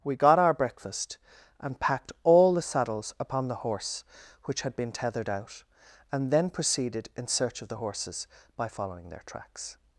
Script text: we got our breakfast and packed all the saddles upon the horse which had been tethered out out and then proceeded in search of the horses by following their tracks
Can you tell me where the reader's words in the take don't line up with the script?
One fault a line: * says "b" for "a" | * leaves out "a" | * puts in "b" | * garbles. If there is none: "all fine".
* leaves out "out"